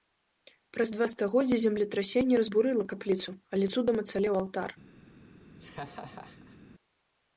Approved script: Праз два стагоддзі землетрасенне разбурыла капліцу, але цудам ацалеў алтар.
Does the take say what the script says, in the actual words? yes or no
yes